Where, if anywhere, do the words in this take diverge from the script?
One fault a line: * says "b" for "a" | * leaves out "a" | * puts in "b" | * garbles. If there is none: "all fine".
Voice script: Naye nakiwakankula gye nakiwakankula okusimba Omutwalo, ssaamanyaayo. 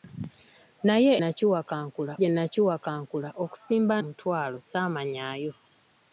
all fine